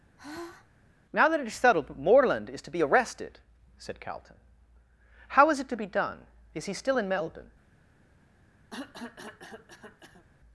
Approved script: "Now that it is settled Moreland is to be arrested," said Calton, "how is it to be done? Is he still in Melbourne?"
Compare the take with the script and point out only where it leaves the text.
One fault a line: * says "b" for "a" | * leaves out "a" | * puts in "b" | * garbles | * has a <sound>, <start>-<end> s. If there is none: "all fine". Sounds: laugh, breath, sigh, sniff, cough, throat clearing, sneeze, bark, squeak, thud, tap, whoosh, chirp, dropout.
* has a sigh, 0.2-0.7 s
* has a cough, 8.7-10.3 s